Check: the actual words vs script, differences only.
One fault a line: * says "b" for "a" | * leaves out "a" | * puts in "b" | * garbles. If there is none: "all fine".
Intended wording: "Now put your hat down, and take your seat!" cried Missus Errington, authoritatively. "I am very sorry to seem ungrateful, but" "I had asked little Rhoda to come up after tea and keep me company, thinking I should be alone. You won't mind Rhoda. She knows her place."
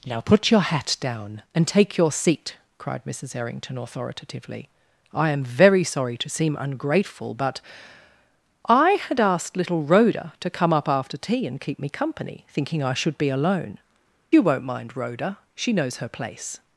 all fine